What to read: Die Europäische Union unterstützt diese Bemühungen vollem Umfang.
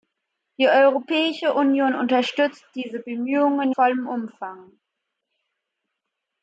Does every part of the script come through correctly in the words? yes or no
yes